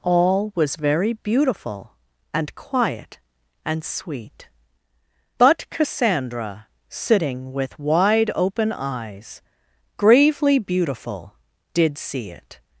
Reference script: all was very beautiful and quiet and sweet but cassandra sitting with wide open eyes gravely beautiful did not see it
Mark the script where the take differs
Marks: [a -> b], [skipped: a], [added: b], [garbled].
all was very beautiful and quiet and sweet but cassandra sitting with wide open eyes gravely beautiful did [skipped: not] see it